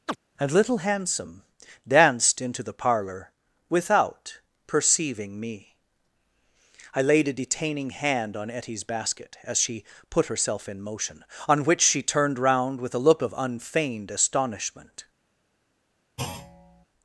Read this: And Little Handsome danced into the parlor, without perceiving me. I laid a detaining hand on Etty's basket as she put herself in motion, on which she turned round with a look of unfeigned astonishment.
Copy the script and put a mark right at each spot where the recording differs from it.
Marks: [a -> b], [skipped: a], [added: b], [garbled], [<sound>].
[chirp] And Little Handsome danced into the parlor, without perceiving me. I laid a detaining hand on Etty's basket as she put herself in motion, on which she turned round with a look of unfeigned astonishment. [thud]